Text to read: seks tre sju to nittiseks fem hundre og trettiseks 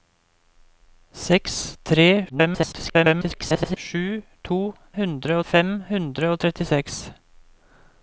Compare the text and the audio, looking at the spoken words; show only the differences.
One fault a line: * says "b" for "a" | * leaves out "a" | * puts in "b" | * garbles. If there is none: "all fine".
* garbles
* says "hundre" for "nittiseks"